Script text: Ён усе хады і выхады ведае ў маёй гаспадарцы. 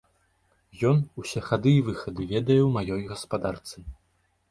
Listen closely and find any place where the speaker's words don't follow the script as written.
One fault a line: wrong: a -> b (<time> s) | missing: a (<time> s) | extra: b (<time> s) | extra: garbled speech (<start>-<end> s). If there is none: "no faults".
no faults